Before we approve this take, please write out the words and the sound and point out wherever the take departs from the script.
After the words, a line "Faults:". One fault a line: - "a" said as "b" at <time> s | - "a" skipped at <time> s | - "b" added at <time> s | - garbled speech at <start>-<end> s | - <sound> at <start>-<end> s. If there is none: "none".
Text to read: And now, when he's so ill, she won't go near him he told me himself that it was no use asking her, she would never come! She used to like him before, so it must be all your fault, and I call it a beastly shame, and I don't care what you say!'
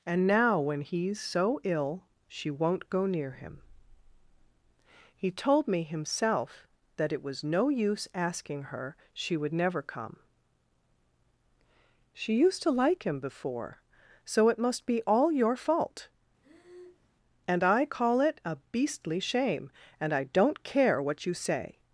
And now, when he's so ill, she won't go near him he told me himself that it was no use asking her, she would never come! She used to like him before, so it must be all your fault, and I call it a beastly shame, and I don't care what you say!'
Faults:
- breath at 16.4-17.1 s